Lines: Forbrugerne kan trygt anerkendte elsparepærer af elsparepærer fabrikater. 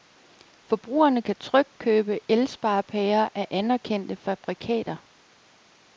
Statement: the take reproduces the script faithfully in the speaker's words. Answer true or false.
false